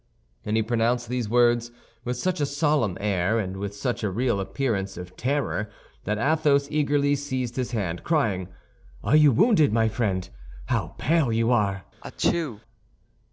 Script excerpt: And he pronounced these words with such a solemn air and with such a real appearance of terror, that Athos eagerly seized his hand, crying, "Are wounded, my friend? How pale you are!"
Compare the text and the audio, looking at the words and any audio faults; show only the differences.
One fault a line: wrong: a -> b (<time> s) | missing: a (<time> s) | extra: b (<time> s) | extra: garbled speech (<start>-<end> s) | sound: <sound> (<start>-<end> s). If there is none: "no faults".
extra: you (9.2 s)
sound: sneeze (12.0-12.6 s)